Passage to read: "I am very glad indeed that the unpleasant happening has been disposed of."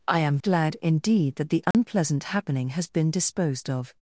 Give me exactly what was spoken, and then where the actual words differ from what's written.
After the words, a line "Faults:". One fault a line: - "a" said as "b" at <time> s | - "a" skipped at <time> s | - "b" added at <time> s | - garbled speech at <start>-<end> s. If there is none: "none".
"I am glad indeed that the unpleasant happening has been disposed of."
Faults:
- "very" skipped at 0.4 s